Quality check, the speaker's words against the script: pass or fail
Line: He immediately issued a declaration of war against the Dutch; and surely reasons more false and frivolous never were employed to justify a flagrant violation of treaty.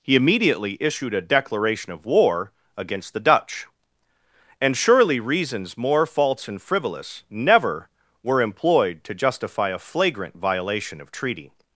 pass